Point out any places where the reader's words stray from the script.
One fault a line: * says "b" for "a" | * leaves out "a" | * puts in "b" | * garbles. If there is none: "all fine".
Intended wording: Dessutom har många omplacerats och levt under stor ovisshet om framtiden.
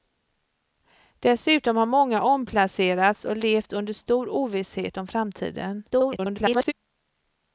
* garbles